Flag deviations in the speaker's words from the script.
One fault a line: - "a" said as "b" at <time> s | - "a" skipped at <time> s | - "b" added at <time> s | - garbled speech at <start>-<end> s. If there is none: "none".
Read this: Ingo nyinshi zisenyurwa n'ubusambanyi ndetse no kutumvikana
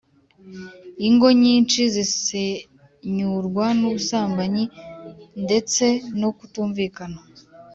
none